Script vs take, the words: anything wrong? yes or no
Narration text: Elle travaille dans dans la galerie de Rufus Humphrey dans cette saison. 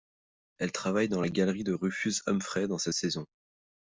yes